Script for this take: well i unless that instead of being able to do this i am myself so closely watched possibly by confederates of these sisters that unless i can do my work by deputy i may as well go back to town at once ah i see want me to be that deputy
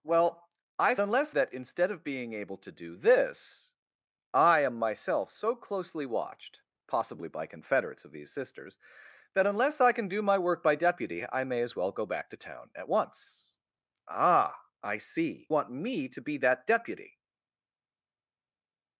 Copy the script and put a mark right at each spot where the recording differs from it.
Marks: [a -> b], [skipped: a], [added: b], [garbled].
well i unless that instead of being able to do this i am myself so closely watched possibly by confederates of these sisters that unless i can do my work by deputy i may as well go back to town at once ah i see want me to be that deputy